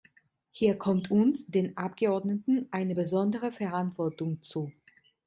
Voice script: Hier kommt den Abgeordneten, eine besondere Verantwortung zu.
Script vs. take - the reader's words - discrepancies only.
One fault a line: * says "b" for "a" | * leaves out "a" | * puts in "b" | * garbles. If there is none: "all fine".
* puts in "uns"